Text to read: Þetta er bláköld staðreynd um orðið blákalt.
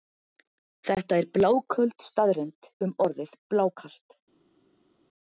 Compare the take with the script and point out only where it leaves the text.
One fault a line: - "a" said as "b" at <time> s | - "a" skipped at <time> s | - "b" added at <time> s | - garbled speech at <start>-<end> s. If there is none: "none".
none